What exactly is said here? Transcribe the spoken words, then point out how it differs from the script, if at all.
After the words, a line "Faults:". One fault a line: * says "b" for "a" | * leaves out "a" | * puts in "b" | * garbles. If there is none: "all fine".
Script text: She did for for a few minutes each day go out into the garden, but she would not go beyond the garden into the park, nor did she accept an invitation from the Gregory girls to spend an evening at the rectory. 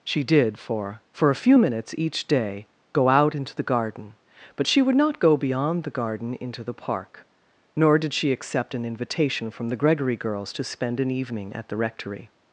She did for for a few minutes each day go out into the garden, but she would not go beyond the garden into the park, nor did she accept an invitation from the Gregory girls to spend an evening at the rectory.
Faults:
all fine